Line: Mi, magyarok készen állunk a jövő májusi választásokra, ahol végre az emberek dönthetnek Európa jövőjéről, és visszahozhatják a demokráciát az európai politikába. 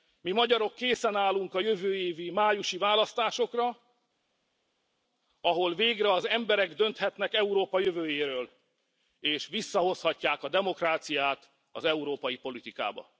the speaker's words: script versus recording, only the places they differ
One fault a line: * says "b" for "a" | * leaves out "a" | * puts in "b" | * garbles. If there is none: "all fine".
* puts in "évi"